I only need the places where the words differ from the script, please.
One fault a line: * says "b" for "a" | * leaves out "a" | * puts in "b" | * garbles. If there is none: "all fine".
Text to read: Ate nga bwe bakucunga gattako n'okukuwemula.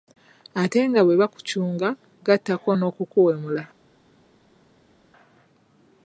all fine